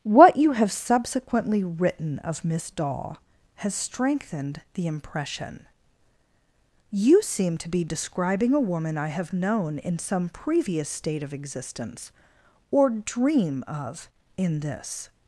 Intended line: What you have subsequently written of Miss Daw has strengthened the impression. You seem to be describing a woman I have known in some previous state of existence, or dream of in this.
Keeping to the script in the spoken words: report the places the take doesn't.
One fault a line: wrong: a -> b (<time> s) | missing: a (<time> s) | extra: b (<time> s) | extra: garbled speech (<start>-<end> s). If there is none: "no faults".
no faults